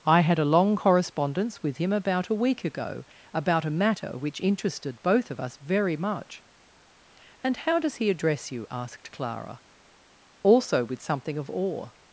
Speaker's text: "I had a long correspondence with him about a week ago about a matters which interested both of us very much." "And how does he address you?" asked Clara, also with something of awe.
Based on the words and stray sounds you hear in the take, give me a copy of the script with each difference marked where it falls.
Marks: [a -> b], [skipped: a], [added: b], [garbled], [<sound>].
"I had a long correspondence with him about a week ago about a [matters -> matter] which interested both of us very much." "And how does he address you?" asked Clara, also with something of awe.